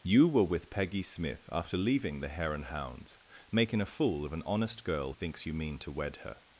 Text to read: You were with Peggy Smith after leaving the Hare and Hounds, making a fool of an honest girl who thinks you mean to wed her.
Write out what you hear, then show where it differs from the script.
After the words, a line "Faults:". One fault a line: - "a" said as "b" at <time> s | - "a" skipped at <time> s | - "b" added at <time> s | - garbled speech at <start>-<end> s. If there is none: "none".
You were with Peggy Smith after leaving the Hare and Hounds, making a fool of an honest girl thinks you mean to wed her.
Faults:
- "who" skipped at 5.1 s